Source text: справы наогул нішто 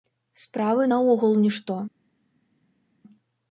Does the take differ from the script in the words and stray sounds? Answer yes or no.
no